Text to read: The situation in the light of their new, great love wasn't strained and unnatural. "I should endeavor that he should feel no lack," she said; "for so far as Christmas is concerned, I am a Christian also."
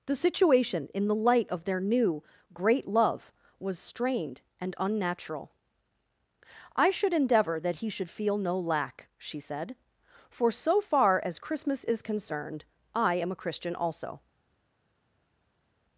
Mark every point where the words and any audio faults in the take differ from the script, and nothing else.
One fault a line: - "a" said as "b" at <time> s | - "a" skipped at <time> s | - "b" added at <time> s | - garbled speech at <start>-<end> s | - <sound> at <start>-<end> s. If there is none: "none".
- "wasn't" said as "was" at 3.6 s